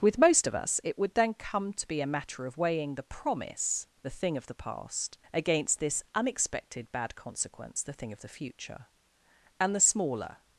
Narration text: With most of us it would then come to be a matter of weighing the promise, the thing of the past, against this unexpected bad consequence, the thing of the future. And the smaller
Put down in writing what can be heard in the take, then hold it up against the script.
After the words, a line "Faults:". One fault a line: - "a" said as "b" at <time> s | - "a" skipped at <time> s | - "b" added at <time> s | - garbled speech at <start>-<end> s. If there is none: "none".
With most of us it would then come to be a matter of weighing the promise, the thing of the past, against this unexpected bad consequence, the thing of the future. And the smaller
Faults:
none